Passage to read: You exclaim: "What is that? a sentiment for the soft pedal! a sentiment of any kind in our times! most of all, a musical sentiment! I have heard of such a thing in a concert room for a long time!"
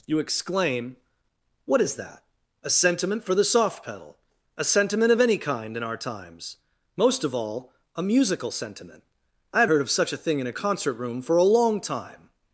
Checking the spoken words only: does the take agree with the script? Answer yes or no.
yes